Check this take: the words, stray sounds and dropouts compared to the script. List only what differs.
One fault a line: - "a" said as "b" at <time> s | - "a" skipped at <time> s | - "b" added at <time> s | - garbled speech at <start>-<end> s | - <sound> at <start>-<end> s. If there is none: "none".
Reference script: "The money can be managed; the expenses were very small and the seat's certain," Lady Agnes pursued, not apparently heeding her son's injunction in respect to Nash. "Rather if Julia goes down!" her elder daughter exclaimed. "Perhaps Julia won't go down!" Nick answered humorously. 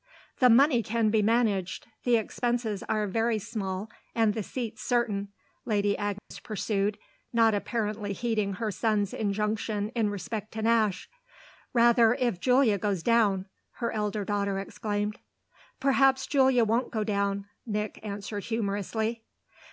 - "were" said as "are" at 2.8 s
- dropout at 6.2-6.3 s